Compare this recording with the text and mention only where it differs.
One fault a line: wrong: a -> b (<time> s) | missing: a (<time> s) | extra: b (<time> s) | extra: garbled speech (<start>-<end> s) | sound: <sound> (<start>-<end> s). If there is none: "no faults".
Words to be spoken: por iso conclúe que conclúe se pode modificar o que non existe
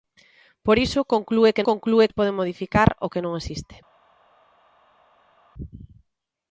no faults